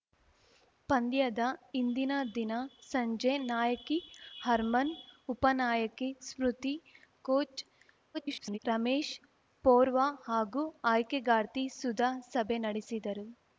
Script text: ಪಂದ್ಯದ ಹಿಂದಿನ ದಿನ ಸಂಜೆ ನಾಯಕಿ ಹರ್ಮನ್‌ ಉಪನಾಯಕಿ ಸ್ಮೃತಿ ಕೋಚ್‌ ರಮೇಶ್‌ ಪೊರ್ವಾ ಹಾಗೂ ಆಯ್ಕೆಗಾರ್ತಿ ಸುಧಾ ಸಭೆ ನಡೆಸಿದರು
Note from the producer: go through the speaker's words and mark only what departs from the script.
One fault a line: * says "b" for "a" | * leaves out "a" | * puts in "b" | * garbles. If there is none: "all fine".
* garbles